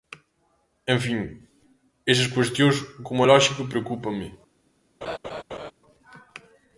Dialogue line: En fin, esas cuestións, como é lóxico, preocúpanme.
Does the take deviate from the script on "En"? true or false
false